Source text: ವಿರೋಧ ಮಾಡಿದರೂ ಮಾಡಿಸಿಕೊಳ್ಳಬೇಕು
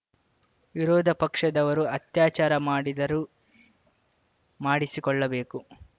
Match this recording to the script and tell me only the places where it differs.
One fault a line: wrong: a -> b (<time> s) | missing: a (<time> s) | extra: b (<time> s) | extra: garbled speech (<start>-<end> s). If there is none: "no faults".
extra: ಪಕ್ಷದವರು ಅತ್ಯಾಚಾರ (1.2 s)